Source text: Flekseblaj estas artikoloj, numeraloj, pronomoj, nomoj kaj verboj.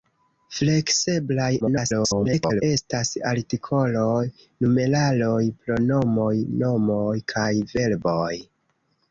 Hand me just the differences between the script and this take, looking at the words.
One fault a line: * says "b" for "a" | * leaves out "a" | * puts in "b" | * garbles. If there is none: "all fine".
* garbles